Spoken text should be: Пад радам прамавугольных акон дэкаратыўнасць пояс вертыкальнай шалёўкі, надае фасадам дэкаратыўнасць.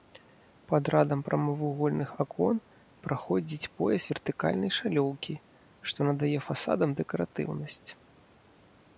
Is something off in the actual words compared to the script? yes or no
yes